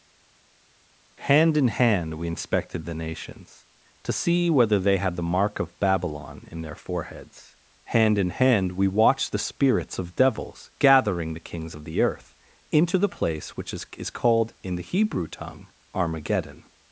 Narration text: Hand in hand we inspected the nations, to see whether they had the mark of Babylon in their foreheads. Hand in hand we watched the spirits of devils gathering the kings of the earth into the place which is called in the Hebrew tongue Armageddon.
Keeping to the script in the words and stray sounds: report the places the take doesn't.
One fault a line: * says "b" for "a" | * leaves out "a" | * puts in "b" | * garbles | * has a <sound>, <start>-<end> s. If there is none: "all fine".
* puts in "is"